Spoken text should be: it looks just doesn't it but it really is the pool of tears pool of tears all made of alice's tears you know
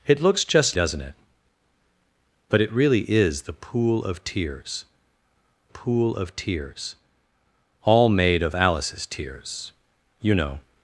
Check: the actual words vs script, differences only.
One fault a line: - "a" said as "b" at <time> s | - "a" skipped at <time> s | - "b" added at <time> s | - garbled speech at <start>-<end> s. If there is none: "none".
none